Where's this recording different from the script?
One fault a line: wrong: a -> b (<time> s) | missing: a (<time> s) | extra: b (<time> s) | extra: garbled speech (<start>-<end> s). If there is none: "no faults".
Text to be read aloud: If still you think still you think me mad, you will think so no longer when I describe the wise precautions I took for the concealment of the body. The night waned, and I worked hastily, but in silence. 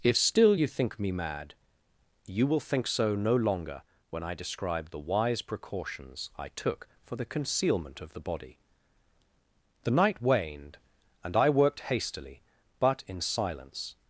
missing: still you think (1.0 s)